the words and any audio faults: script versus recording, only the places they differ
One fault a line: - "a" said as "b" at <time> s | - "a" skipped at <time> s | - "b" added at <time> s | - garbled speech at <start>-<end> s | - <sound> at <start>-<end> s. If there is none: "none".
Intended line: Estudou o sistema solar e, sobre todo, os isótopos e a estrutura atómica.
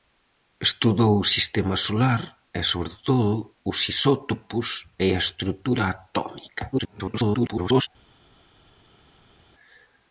- garbled speech at 6.7-7.9 s